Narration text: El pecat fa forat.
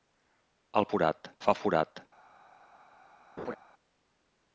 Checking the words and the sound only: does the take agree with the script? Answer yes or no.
no